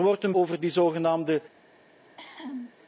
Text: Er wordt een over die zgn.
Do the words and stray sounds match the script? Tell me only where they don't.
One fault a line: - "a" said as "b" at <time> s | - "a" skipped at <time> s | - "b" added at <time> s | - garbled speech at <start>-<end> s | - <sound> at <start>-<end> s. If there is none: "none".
- cough at 2.0-2.7 s